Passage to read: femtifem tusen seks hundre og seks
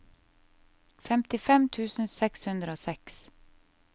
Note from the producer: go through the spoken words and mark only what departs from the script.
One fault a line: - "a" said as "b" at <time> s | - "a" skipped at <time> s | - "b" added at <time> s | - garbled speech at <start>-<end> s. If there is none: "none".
none